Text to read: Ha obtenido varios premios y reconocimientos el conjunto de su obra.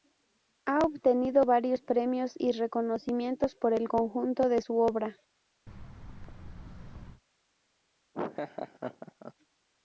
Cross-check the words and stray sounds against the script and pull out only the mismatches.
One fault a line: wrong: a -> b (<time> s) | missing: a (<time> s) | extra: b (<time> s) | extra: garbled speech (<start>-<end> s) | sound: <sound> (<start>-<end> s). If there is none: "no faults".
extra: por (3.5 s)
sound: thud (5.7-7.2 s)
sound: laugh (8.1-9.3 s)